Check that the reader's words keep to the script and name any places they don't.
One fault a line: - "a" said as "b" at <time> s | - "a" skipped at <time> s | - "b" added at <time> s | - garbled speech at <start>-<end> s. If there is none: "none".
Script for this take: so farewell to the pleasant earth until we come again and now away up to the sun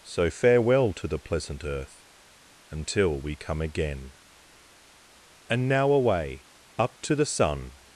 none